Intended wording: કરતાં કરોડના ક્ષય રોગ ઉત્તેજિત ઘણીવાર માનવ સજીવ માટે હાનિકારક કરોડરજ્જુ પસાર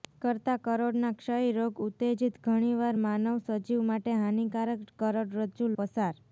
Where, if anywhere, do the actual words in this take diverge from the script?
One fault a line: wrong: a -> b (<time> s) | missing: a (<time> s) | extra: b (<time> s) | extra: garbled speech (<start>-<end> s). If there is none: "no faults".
no faults